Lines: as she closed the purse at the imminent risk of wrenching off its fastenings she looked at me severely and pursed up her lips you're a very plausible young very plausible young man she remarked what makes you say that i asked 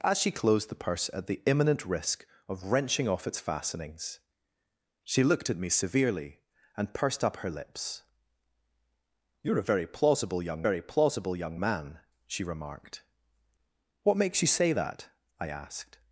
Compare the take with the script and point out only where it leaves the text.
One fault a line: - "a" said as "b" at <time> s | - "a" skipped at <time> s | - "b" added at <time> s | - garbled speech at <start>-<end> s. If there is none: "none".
none